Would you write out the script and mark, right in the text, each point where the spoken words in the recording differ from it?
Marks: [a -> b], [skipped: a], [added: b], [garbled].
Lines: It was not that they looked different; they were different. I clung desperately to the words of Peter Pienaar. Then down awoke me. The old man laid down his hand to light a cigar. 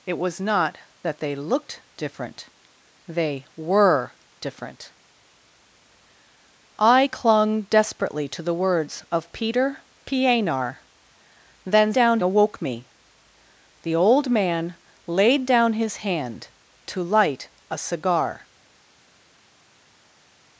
It was not that they looked different; they were different. I clung desperately to the words of Peter Pienaar. Then down awoke me. The old man laid down his hand to light a cigar.